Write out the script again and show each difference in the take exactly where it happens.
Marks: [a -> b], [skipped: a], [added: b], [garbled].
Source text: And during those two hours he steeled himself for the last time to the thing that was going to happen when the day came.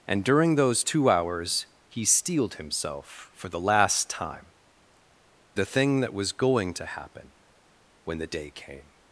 And during those two hours he steeled himself for the last time [skipped: to] the thing that was going to happen when the day came.